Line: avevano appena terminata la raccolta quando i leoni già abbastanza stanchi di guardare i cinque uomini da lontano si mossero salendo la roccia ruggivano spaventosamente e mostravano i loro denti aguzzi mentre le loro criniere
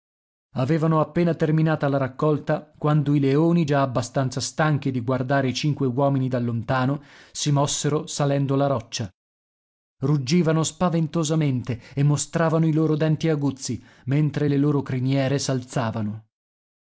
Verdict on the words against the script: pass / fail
pass